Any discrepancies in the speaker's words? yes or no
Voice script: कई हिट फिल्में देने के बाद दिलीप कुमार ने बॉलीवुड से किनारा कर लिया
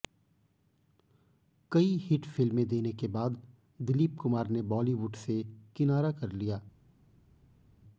no